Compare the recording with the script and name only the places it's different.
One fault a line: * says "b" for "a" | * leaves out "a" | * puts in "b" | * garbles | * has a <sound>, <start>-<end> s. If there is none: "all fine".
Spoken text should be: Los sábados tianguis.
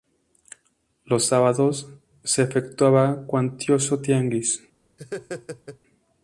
* puts in "se efectuaba cuantioso"
* has a laugh, 5.0-5.8 s